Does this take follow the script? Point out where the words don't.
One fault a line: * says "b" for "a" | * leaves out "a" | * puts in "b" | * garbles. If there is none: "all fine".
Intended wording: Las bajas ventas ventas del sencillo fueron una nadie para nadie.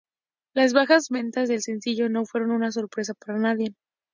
* leaves out "ventas"
* puts in "no"
* says "sorpresa" for "nadie"